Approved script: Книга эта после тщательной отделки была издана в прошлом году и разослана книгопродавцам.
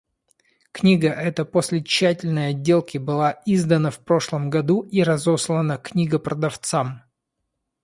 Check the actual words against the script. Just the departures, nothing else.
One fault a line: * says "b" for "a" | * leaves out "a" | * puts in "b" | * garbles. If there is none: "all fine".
all fine